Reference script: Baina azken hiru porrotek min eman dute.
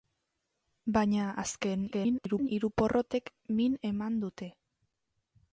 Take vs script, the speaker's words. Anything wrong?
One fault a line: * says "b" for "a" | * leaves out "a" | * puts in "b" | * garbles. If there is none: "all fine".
* garbles